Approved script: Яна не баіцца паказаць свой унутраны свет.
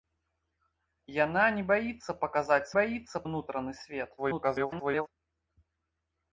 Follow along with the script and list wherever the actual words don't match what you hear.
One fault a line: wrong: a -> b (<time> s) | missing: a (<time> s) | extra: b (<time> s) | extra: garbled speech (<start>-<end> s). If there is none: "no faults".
wrong: свой -> баіцца (2.8 s)
extra: garbled speech (4.2-5.1 s)